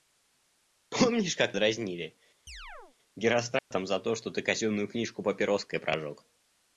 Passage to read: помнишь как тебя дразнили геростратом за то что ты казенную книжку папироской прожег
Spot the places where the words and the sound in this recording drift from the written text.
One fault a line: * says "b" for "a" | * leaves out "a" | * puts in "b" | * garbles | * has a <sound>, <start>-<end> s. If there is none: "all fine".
* leaves out "тебя"
* has a chirp, 2.5-3.0 s
* has a dropout, 3.6-3.7 s